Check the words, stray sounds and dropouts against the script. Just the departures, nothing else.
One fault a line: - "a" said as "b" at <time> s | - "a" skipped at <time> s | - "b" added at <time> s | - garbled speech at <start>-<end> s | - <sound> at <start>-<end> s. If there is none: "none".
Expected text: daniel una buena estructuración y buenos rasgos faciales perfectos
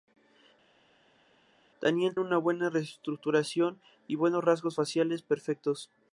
none